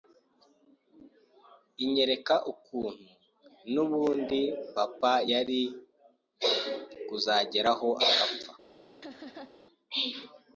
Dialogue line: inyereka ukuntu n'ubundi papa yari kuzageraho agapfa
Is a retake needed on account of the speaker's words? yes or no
no